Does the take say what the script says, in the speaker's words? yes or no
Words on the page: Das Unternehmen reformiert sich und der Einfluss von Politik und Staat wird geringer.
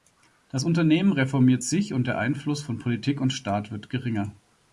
yes